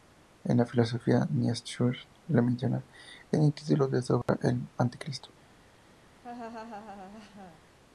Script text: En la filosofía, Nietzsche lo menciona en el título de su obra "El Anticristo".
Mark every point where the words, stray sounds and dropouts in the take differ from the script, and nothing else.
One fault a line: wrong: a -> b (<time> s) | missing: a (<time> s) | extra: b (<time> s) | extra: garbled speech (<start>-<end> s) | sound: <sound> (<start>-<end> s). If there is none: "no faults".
sound: dropout (4.2-4.3 s)
sound: laugh (6.2-7.6 s)